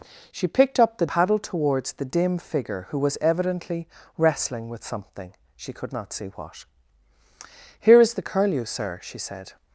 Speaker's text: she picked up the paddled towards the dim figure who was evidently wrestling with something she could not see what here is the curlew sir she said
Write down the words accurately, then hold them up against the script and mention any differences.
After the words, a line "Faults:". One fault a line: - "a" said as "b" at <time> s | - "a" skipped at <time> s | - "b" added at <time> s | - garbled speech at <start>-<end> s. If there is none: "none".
she picked up the paddled towards the dim figure who was evidently wrestling with something she could not see what here is the curlew sir she said
Faults:
none